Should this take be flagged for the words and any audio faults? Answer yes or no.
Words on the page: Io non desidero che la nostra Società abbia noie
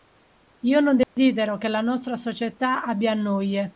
yes